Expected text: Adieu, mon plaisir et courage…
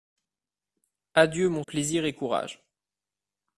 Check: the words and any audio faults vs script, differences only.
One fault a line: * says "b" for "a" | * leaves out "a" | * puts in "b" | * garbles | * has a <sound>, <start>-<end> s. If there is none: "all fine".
all fine